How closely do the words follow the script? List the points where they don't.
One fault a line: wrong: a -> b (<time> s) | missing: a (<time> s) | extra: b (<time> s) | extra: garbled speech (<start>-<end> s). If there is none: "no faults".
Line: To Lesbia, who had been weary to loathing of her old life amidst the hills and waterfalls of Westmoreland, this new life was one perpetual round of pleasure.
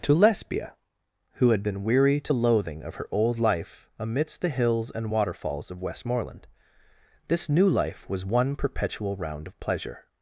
no faults